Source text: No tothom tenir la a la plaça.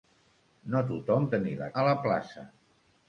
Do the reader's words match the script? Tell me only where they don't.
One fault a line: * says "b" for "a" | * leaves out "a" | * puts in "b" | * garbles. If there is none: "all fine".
all fine